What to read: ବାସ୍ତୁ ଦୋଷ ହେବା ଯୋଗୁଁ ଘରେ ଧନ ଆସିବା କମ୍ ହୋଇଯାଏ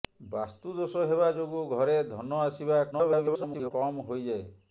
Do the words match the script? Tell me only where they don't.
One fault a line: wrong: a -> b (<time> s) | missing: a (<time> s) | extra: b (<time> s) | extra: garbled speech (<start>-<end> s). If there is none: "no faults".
extra: garbled speech (2.9-3.7 s)